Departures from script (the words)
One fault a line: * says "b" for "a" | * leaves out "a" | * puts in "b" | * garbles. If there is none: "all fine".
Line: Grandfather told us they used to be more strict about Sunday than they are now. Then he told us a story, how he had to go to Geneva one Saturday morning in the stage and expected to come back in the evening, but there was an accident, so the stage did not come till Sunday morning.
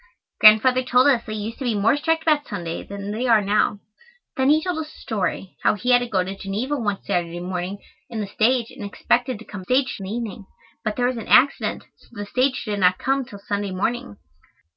* says "stage" for "back"